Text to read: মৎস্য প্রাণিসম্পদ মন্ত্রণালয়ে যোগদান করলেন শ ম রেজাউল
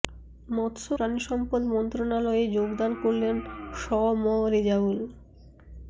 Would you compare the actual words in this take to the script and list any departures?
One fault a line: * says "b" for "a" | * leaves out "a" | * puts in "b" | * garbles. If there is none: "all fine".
all fine